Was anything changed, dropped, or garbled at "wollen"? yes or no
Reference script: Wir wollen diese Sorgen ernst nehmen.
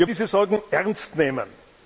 yes